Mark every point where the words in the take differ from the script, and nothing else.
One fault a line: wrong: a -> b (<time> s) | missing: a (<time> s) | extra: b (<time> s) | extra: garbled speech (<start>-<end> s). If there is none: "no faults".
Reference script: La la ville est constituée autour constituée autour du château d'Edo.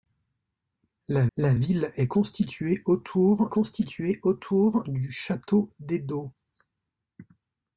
no faults